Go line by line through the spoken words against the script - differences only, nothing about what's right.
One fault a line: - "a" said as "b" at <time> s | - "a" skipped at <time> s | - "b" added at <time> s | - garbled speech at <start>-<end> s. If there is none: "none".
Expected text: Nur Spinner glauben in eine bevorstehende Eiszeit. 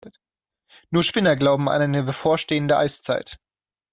- "in" said as "an" at 1.7 s